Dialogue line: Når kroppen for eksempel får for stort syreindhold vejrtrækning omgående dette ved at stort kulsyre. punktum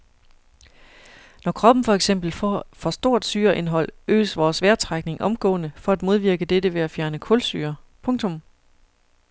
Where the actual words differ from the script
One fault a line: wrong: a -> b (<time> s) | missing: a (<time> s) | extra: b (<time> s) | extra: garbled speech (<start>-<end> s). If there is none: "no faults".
extra: øges vores (4.1 s)
extra: for at modvirke (5.8 s)
wrong: stort -> fjerne (6.9 s)